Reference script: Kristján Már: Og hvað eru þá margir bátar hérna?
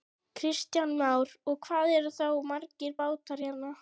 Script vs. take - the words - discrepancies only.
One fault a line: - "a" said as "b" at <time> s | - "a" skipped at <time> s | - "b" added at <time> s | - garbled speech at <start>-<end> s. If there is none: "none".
none